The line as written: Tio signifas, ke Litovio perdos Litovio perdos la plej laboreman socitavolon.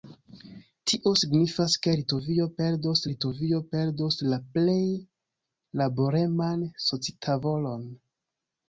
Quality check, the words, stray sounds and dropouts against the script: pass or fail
pass